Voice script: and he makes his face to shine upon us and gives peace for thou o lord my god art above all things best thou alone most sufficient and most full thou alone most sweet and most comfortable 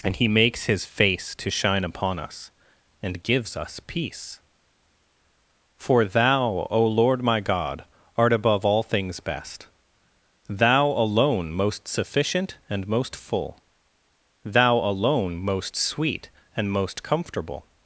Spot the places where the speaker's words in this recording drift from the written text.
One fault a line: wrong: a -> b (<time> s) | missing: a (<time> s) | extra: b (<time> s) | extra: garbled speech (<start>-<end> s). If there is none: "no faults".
extra: us (3.5 s)